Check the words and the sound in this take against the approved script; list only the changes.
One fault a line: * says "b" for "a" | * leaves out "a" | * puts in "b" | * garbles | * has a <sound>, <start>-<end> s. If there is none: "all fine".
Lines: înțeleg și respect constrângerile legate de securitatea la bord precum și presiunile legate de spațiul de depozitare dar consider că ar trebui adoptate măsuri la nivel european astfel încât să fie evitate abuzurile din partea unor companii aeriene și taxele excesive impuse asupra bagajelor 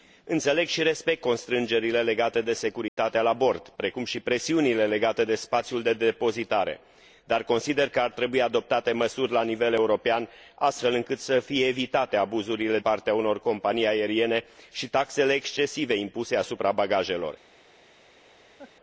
* has a dropout, 2.9-3.0 s
* leaves out "din"
* has a laugh, 18.6-18.7 s